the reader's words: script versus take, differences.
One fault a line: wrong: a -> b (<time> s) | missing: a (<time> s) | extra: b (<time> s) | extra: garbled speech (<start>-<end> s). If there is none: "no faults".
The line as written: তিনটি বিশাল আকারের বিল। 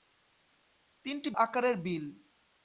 missing: বিশাল (1.3 s)